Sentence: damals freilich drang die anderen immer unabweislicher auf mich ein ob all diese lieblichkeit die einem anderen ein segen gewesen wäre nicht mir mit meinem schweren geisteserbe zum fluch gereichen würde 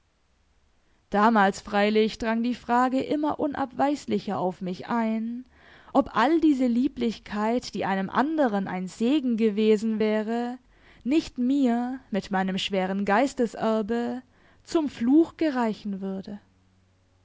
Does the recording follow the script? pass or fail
fail